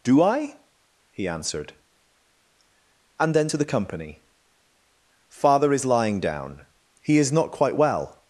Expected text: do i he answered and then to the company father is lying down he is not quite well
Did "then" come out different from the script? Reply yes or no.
no